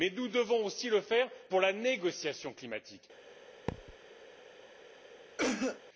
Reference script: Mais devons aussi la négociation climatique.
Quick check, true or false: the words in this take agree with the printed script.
false